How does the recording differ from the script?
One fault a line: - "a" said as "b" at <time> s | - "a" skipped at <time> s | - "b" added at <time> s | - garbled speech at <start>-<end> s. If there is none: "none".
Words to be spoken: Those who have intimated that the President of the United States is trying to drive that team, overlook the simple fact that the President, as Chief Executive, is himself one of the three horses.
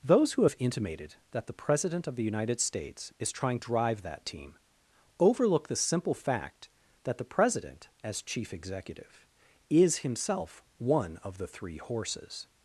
- "to" skipped at 3.6 s